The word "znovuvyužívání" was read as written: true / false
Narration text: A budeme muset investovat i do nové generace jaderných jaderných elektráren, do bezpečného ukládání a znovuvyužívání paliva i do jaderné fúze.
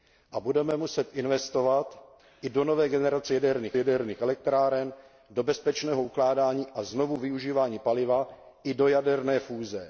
true